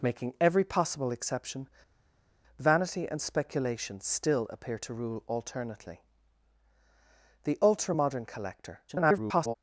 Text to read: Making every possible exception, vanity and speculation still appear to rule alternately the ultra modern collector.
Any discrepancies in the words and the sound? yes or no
yes